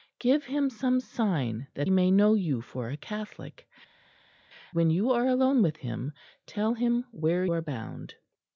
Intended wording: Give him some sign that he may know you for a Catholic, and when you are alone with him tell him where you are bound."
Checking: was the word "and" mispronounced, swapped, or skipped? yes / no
yes